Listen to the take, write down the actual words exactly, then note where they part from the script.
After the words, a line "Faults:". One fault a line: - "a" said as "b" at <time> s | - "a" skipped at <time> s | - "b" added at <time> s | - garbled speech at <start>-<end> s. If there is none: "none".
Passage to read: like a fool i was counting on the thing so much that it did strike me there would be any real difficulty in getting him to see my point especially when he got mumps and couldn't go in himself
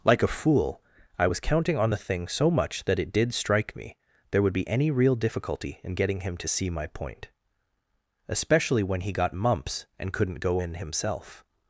like a fool i was counting on the thing so much that it did strike me there would be any real difficulty in getting him to see my point especially when he got mumps and couldn't go in himself
Faults:
none